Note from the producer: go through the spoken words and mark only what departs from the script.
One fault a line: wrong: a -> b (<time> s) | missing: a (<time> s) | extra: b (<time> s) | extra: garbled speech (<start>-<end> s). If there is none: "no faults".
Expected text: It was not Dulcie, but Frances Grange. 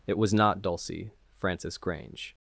missing: but (1.1 s)